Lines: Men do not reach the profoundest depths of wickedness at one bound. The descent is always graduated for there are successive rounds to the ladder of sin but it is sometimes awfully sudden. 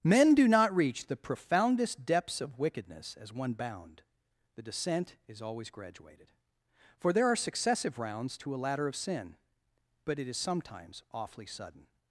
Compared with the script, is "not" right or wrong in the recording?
right